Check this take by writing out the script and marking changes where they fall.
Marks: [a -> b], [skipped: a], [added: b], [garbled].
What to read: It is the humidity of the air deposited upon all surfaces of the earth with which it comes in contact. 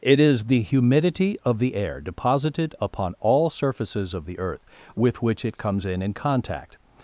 It is the humidity of the air deposited upon all surfaces of the earth with which it comes in [added: in] contact.